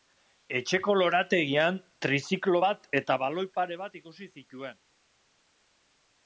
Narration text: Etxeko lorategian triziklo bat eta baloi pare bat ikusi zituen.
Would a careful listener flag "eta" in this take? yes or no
no